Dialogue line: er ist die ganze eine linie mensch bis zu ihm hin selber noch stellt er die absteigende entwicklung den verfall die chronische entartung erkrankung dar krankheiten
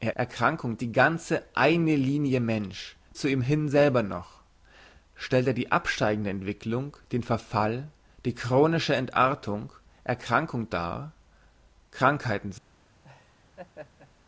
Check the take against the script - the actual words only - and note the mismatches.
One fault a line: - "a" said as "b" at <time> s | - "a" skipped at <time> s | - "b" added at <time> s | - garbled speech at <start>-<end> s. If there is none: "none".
- "ist" said as "erkrankung" at 0.2 s
- "bis" skipped at 3.0 s